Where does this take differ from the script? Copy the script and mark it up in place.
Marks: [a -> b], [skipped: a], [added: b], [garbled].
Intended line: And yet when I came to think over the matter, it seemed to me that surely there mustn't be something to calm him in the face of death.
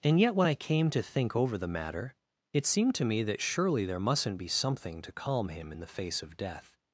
And yet when I came to think over the matter, it seemed to me that surely there mustn't be something to calm him in the face of death.